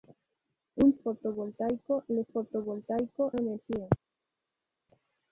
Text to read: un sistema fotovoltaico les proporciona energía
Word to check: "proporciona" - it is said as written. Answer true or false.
false